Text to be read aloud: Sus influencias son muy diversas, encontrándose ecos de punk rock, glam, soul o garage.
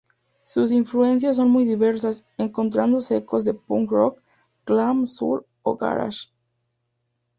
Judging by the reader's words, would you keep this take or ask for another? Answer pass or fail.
pass